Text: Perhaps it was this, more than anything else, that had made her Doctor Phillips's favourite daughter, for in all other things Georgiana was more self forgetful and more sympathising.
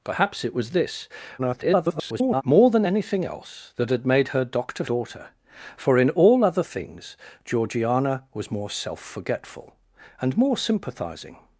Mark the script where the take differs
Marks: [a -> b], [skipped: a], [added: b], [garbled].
Perhaps it was this, [garbled] more than anything else, that had made her Doctor [skipped: Phillips's favourite] daughter, for in all other things Georgiana was more self forgetful and more sympathising.